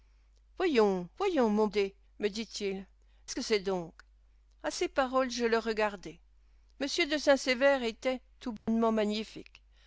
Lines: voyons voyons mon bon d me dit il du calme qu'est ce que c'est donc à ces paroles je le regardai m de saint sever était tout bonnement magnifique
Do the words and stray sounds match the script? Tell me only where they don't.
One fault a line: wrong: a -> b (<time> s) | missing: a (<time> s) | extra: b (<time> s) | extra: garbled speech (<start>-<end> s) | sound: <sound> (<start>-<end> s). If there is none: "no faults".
missing: bon (1.7 s)
missing: du calme qu'est (2.9 s)
sound: dropout (8.6-8.7 s)